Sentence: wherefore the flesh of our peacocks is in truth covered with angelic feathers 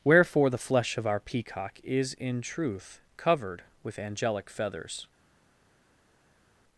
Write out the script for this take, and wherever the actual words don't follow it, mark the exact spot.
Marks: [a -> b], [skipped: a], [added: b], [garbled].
wherefore the flesh of our [peacocks -> peacock] is in truth covered with angelic feathers